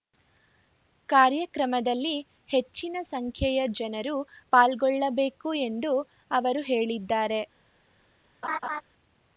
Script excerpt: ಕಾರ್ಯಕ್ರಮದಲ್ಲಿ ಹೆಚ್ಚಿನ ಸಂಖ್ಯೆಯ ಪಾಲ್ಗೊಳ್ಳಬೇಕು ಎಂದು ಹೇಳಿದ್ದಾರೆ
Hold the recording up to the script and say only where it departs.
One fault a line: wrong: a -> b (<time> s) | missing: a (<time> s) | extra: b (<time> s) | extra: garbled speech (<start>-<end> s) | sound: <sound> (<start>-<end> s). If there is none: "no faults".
extra: ಜನರು (3.7 s)
extra: ಅವರು (6.3 s)
sound: laugh (8.4-8.8 s)